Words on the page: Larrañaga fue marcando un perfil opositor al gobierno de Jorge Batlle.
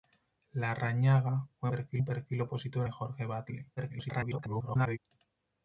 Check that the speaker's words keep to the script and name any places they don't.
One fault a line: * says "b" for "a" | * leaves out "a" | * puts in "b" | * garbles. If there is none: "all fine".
* says "perfil" for "marcando"
* leaves out "al gobierno"
* garbles